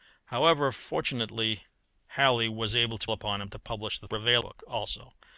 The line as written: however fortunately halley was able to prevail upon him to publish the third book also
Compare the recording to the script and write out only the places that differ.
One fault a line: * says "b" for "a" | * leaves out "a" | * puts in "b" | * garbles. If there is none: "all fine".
* leaves out "prevail"
* says "prevail" for "third"